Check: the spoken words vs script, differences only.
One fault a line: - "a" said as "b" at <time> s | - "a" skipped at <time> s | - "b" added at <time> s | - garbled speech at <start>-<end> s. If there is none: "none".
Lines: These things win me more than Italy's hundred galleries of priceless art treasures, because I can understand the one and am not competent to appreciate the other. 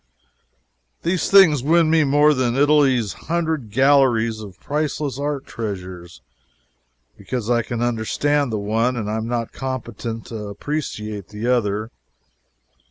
none